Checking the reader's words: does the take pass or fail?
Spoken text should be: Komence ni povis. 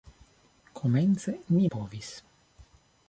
pass